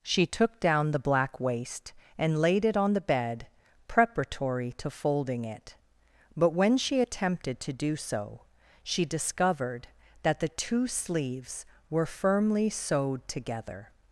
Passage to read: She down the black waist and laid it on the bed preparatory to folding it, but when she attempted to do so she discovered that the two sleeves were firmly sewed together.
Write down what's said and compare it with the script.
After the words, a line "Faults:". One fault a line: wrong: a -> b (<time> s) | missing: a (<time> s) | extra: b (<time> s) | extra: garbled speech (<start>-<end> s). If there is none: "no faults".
She took down the black waist and laid it on the bed preparatory to folding it, but when she attempted to do so she discovered that the two sleeves were firmly sewed together.
Faults:
extra: took (0.2 s)